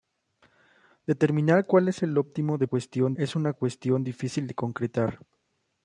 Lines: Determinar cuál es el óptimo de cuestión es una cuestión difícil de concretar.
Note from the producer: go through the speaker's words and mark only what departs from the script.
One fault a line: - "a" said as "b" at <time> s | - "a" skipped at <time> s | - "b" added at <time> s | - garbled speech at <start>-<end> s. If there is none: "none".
none